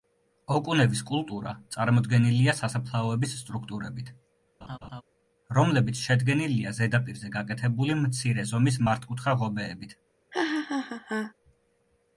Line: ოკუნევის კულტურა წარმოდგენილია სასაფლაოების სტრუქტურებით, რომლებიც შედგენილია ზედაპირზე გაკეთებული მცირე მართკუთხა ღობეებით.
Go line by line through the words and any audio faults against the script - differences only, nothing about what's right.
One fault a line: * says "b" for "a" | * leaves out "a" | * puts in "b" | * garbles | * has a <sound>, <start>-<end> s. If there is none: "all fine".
* has a laugh, 4.6-5.0 s
* puts in "ზომის"
* has a laugh, 10.3-11.3 s